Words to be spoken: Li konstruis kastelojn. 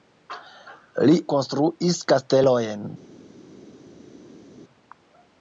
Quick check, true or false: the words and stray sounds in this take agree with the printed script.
true